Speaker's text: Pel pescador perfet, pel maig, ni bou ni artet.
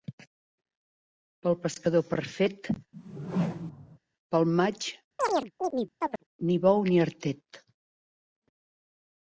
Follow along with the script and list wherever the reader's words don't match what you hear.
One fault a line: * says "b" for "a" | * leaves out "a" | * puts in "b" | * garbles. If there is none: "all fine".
all fine